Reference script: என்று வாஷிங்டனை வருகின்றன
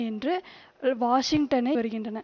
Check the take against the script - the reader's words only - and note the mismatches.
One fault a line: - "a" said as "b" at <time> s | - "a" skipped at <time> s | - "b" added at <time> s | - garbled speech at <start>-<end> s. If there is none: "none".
none